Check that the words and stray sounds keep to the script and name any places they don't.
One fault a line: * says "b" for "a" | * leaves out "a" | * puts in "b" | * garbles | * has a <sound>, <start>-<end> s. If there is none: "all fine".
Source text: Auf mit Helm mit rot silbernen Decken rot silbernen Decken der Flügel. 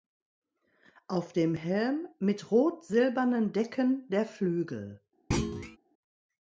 * says "dem" for "mit"
* leaves out "rot silbernen Decken"
* has a thud, 5.3-5.8 s